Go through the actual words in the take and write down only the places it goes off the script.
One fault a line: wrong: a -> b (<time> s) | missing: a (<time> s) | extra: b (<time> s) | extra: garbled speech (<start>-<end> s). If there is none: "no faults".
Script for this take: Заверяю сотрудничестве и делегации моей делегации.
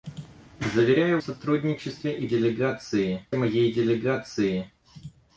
no faults